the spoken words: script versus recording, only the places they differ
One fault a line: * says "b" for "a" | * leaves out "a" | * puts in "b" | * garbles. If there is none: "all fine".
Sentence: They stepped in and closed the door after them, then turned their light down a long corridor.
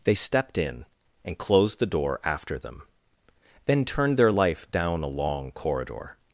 * says "life" for "light"